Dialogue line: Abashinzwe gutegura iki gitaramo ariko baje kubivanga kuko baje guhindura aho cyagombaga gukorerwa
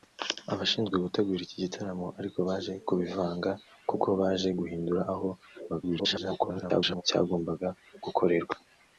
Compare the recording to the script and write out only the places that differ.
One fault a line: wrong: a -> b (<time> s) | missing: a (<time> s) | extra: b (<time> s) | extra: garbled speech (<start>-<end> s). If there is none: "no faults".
extra: garbled speech (5.7-7.0 s)